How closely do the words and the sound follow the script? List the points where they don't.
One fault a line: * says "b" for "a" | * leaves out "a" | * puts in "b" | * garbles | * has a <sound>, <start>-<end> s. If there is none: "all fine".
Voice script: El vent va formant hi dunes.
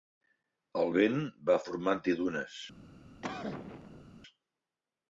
* has a cough, 3.2-4.1 s